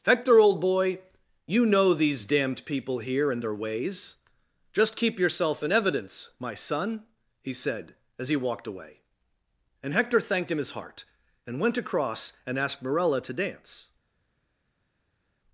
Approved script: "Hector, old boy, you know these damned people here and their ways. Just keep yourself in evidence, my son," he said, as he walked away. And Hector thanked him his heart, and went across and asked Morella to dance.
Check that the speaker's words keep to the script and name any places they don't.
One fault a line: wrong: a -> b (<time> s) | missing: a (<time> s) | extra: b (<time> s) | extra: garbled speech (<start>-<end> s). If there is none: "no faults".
no faults